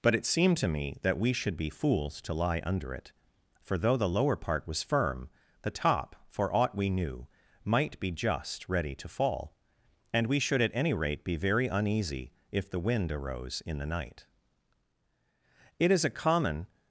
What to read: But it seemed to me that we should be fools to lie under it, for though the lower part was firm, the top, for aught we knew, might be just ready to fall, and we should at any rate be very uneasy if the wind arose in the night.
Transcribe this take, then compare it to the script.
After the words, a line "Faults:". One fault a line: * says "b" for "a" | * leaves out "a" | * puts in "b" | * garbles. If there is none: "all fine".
But it seemed to me that we should be fools to lie under it, for though the lower part was firm, the top, for aught we knew, might be just ready to fall, and we should at any rate be very uneasy if the wind arose in the night. It is a common
Faults:
* puts in "It is a common"